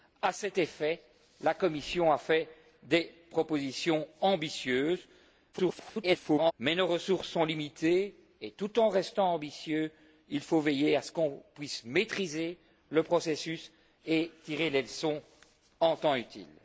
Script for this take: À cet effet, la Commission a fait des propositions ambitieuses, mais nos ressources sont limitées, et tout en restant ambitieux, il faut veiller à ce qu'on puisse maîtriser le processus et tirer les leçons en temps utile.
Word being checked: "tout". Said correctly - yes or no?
yes